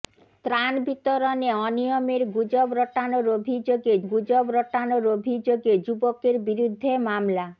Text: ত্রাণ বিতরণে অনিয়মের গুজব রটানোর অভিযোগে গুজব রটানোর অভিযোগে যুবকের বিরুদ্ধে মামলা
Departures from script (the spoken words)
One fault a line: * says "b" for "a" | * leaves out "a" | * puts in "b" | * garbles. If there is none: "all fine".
all fine